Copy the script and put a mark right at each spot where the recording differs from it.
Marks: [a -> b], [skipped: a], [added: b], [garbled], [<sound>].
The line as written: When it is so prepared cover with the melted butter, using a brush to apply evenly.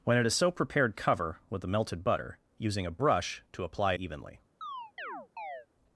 When it is so prepared cover with the melted butter, using a brush to apply evenly. [chirp]